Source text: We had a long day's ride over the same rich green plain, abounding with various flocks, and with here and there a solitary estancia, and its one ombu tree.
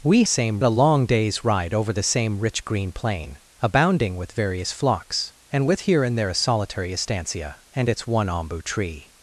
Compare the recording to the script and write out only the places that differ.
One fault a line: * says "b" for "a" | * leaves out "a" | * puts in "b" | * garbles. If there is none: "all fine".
* says "same" for "had"